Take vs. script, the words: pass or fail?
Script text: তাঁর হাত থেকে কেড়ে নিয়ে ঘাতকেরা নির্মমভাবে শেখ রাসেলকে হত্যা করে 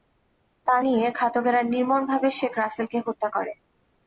fail